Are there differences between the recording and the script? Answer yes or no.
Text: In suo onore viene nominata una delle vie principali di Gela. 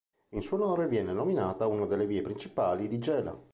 no